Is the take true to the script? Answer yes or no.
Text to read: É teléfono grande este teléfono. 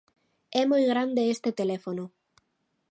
no